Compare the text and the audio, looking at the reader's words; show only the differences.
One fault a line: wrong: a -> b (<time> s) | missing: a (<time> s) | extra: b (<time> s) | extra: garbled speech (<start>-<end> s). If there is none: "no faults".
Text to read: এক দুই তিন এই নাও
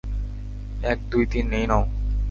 no faults